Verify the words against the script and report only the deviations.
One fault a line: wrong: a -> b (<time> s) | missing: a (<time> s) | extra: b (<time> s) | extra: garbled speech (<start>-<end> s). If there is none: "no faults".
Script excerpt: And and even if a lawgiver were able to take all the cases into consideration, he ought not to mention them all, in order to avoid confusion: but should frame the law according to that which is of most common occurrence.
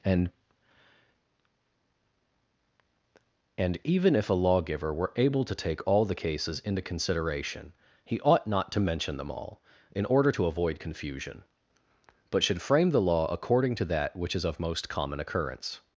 no faults